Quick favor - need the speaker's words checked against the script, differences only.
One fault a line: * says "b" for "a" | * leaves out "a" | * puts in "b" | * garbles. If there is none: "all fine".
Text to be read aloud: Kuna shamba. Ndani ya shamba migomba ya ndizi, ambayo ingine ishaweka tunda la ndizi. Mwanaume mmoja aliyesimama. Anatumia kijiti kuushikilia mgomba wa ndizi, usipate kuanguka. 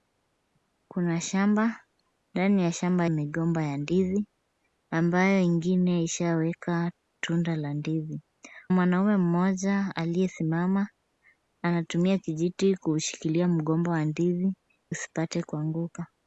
all fine